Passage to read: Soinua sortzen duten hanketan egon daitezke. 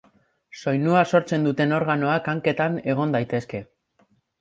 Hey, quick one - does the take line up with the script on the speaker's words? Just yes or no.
no